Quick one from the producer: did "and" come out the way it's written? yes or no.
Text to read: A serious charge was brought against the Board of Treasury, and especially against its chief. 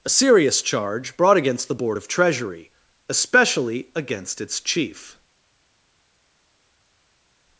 no